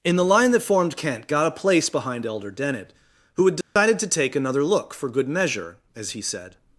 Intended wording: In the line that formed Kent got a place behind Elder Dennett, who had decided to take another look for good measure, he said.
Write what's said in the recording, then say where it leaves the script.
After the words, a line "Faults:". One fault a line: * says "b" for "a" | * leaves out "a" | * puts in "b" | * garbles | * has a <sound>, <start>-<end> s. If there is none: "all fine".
In the line that formed Kent got a place behind Elder Dennett, who had decided to take another look for good measure, as he said.
Faults:
* has a dropout, 3.6-3.8 s
* puts in "as"